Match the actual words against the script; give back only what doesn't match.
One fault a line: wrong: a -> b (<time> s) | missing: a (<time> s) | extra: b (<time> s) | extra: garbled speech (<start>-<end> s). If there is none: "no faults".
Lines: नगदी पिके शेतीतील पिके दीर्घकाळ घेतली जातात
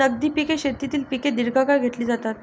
no faults